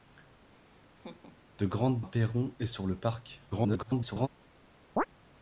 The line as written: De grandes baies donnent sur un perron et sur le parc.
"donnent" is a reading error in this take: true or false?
true